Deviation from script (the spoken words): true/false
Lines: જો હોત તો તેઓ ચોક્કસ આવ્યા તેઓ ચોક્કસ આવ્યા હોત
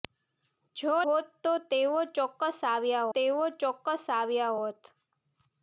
false